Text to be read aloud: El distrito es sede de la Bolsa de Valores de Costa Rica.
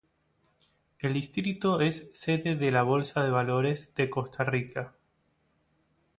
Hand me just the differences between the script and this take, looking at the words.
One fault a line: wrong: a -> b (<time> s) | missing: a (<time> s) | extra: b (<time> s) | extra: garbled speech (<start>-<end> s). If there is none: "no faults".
no faults